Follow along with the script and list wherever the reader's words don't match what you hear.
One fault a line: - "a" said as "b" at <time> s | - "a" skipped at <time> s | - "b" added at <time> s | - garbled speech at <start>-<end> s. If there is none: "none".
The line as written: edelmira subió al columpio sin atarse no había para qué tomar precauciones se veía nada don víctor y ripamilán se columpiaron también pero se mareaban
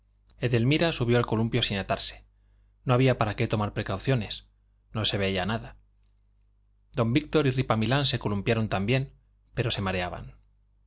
- "no" added at 4.9 s